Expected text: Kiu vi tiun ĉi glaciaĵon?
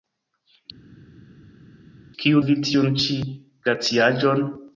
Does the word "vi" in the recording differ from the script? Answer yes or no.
no